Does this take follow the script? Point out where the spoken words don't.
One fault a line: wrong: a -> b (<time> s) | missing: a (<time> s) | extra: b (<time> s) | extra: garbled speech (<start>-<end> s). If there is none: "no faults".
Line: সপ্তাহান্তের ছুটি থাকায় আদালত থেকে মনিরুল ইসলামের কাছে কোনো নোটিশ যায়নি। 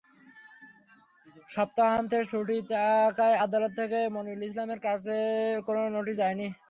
no faults